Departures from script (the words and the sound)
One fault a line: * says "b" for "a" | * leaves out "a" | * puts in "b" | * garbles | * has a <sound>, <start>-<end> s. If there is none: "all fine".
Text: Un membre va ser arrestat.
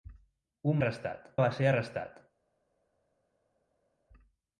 * says "arrestat" for "membre"